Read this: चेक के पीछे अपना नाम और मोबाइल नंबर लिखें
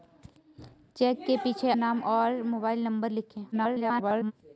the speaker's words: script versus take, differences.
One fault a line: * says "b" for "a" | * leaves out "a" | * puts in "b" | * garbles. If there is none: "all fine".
* leaves out "अपना"
* garbles